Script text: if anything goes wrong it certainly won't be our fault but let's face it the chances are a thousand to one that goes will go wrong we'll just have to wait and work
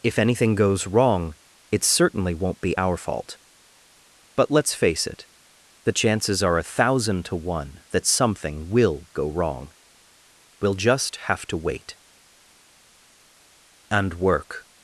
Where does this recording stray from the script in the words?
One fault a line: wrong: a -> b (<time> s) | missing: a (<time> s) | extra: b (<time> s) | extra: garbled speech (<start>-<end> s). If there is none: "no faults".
wrong: goes -> something (8.0 s)